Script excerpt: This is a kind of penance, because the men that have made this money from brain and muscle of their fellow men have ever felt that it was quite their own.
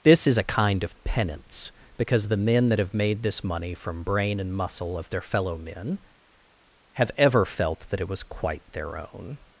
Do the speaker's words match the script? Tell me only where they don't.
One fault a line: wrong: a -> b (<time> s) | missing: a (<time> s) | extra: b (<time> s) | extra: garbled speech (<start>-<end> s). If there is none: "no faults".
no faults